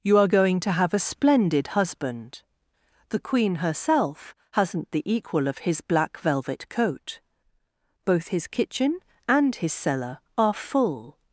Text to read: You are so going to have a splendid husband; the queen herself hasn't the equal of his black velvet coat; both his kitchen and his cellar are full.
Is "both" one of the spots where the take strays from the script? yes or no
no